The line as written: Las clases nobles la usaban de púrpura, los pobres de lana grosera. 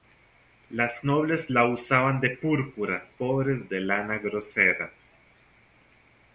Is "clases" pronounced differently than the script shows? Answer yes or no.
yes